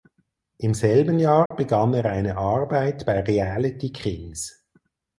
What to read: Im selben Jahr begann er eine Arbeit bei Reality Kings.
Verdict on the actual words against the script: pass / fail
pass